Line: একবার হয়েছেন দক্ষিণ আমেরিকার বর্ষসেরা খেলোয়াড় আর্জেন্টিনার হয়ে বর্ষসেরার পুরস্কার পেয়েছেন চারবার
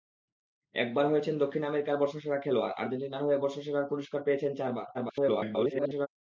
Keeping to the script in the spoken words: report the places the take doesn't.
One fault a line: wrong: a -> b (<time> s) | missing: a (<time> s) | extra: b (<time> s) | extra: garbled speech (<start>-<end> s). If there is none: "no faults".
extra: garbled speech (4.9-6.1 s)